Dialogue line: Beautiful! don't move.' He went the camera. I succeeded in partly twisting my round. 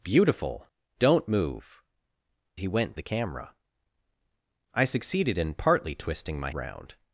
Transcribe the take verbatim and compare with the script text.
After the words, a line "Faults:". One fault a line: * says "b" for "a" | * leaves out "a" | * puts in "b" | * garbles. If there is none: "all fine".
Beautiful! don't move.' He went the camera. I succeeded in partly twisting my round.
Faults:
all fine